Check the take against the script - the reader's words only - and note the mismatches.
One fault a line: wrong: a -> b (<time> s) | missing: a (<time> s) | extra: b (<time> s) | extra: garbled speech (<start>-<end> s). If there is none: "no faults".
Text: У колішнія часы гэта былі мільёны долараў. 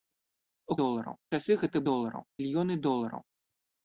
wrong: колішнія -> долараў (0.8 s)
wrong: былі -> долараў (1.9 s)